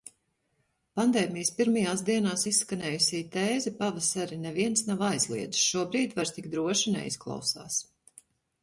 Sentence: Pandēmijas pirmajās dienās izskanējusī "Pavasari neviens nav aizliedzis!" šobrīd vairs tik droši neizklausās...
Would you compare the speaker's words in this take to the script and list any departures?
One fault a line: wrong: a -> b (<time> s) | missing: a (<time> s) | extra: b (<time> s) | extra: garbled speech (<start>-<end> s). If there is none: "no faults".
extra: tēze (3.4 s)